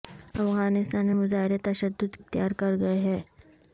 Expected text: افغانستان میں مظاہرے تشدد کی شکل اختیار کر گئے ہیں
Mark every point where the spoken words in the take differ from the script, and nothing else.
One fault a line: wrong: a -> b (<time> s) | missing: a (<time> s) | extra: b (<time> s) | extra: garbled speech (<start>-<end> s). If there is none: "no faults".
missing: کی شکل (2.2 s)